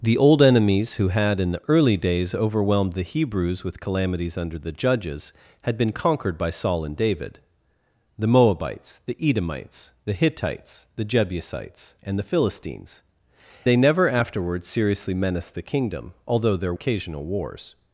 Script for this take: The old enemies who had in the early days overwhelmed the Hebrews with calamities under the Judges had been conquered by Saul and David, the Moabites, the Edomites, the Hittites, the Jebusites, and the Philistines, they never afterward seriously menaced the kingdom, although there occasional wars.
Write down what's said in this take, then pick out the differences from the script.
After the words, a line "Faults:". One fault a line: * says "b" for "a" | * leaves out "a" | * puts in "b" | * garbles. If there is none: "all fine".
The old enemies who had in the early days overwhelmed the Hebrews with calamities under the Judges had been conquered by Saul and David, the Moabites, the Edomites, the Hittites, the Jebusites, and the Philistines, they never afterward seriously menaced the kingdom, although there occasional wars.
Faults:
all fine